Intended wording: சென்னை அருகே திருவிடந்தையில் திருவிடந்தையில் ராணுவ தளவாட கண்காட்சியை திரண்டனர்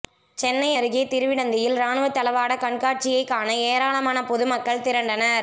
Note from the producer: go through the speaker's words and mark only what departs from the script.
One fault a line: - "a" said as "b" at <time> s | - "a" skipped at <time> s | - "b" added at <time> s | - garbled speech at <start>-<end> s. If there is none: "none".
- "திருவிடந்தையில்" skipped at 1.7 s
- "காண ஏராளமான பொதுமக்கள்" added at 3.2 s